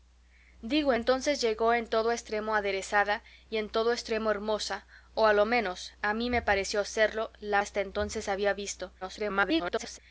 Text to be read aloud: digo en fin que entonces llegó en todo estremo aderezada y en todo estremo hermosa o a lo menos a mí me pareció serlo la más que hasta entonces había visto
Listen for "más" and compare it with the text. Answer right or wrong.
wrong